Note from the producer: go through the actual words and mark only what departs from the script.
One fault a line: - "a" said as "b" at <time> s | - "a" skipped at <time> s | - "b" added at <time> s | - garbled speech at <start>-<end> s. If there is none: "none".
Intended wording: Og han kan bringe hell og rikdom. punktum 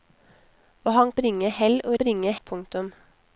- "kan" skipped at 1.1 s
- "rikdom" said as "bringe" at 2.0 s